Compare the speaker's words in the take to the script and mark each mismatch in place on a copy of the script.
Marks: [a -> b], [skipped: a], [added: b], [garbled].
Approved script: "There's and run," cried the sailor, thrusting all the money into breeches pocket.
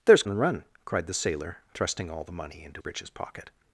"There's and run," cried the sailor, thrusting all the money into breeches pocket.